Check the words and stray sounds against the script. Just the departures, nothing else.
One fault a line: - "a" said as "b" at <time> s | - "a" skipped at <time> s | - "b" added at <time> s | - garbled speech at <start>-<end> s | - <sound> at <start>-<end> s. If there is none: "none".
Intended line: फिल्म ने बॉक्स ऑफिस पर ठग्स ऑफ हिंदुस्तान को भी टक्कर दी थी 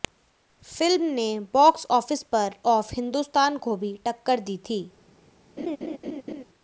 - "ठग्स" skipped at 2.5 s
- laugh at 5.6-6.4 s